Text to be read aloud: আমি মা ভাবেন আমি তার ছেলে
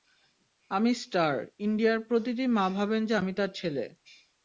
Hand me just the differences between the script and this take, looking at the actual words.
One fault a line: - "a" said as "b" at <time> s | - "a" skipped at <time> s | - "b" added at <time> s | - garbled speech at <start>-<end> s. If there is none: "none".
- "স্টার ইন্ডিয়ার প্রতিটি" added at 0.9 s
- "যে" added at 3.0 s